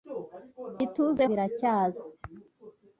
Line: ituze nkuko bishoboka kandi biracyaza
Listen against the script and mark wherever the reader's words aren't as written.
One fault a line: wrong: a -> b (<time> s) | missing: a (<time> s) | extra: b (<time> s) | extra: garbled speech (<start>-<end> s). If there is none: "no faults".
missing: nkuko bishoboka kandi (1.2 s)